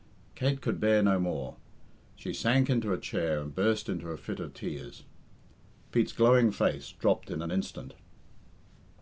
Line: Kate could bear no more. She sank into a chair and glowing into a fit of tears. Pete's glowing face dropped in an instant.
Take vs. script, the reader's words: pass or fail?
fail